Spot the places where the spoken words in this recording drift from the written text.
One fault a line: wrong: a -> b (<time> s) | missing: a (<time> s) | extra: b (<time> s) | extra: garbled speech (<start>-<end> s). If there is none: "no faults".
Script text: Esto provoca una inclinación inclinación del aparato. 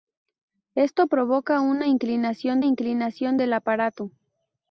no faults